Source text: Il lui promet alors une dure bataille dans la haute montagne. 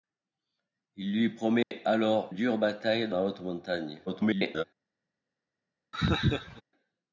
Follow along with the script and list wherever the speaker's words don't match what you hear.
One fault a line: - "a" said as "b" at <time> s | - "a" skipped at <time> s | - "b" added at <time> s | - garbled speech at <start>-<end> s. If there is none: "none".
- "une" skipped at 2.3 s
- "dans" skipped at 3.1 s
- garbled speech at 4.1-4.6 s